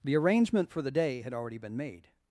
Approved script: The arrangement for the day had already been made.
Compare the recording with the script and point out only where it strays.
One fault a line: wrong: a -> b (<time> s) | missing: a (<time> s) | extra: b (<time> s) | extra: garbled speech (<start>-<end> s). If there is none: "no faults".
no faults